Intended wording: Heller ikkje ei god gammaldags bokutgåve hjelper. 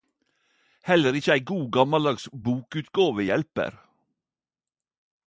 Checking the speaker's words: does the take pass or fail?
pass